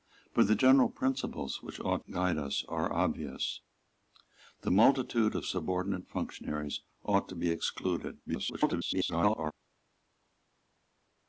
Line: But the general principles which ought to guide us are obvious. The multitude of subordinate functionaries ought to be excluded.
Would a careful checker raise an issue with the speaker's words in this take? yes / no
yes